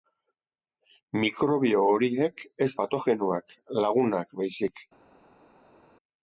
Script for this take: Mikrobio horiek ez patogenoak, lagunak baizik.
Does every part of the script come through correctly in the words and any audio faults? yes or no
yes